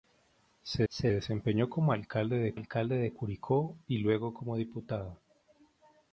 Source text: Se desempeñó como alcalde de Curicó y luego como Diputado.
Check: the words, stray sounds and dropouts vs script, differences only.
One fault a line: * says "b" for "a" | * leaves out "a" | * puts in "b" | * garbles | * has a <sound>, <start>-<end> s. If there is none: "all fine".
* puts in "se"
* puts in "alcalde de"